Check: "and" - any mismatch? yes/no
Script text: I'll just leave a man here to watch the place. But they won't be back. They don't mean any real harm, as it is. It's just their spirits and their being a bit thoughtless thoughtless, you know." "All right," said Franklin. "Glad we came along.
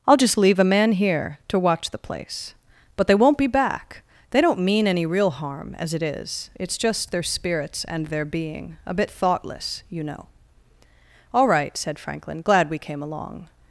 no